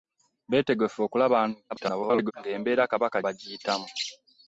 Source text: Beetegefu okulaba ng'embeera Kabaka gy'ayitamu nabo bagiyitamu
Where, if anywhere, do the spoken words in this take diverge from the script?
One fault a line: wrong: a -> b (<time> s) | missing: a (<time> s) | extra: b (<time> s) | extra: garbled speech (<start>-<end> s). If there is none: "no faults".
extra: garbled speech (1.7-2.3 s)
missing: gy'ayitamu nabo (3.2 s)